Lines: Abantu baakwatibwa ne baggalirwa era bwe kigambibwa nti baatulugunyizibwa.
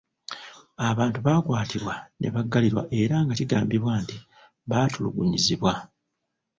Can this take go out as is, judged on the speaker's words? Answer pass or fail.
fail